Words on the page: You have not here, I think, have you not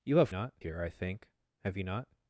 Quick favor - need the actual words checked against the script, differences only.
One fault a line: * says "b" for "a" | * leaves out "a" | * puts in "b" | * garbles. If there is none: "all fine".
all fine